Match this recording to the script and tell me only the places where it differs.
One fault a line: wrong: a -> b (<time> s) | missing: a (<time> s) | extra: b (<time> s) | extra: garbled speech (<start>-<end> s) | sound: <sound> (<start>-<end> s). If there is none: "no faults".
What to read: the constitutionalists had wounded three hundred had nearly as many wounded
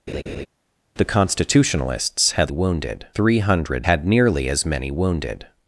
sound: laugh (0.1-0.5 s)